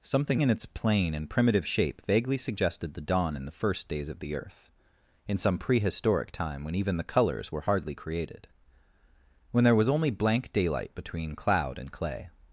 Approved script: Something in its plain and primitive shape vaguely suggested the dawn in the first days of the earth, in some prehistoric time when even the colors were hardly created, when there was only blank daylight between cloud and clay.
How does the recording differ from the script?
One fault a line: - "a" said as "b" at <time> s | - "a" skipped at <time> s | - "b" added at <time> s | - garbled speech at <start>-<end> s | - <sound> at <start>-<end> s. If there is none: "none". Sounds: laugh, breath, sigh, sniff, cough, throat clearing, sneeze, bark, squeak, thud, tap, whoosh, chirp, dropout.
none